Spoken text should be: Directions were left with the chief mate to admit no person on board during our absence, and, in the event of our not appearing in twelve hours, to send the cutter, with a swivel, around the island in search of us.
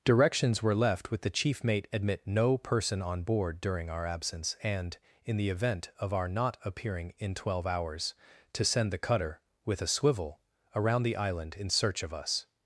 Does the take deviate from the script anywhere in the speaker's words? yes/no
yes